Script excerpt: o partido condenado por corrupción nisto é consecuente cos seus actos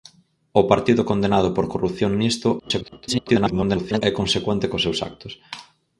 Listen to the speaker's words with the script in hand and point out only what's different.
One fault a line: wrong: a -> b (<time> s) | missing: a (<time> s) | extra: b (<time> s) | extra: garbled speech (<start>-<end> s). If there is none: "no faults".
extra: garbled speech (2.6-4.0 s)